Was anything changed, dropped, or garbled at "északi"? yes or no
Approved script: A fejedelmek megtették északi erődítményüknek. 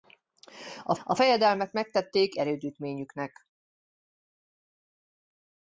yes